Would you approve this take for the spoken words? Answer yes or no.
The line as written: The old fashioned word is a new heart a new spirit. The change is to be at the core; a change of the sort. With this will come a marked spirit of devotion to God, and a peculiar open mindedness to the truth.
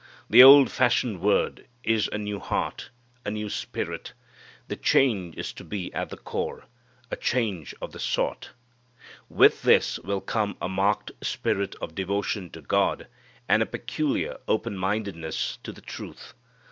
yes